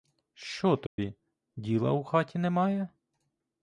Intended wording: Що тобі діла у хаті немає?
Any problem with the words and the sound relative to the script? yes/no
yes